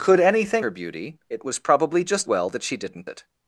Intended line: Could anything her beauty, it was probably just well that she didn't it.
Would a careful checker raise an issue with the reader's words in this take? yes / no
no